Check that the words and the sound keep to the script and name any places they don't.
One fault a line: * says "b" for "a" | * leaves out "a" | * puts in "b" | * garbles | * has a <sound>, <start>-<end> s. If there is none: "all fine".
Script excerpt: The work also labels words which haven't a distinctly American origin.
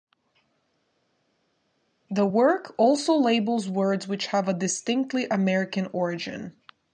* says "have" for "haven't"